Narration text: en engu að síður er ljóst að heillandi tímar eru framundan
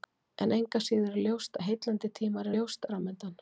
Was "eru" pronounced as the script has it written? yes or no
no